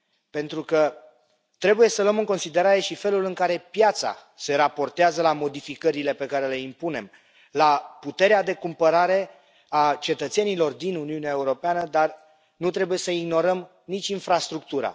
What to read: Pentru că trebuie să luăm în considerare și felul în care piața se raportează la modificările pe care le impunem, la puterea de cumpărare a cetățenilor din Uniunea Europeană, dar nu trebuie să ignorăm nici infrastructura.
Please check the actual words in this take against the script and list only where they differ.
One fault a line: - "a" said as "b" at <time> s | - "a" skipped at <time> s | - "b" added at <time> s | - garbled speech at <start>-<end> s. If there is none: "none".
none